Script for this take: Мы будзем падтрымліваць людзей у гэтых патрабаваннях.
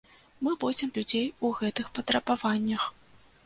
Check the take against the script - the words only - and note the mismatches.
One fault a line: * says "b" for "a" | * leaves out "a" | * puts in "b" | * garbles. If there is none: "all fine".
* leaves out "падтрымліваць"